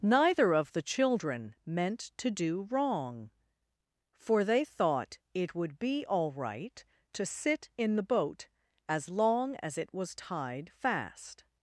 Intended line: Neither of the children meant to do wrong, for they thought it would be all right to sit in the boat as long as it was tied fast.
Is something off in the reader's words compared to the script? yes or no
no